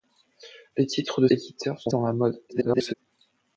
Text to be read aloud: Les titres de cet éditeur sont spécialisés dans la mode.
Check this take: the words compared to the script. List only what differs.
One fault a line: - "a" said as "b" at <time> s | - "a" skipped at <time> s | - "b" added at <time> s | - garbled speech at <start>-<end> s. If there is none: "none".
- "cet" skipped at 1.3 s
- "spécialisés" skipped at 1.9 s
- garbled speech at 2.5-2.9 s